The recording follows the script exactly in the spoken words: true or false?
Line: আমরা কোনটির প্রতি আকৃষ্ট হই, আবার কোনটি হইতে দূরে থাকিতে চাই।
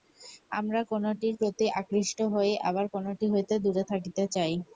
true